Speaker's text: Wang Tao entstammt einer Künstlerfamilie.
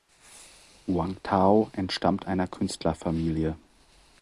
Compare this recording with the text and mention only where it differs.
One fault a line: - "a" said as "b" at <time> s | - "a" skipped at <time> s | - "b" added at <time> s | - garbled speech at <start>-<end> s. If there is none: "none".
none